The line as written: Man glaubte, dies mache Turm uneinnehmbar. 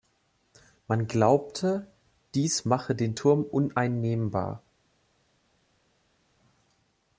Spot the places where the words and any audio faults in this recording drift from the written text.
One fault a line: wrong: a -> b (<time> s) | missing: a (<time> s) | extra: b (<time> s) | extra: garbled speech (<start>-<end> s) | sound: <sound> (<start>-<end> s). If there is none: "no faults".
extra: den (3.0 s)